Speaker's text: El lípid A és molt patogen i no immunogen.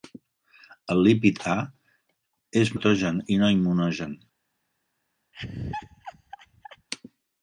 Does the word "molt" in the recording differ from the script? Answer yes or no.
yes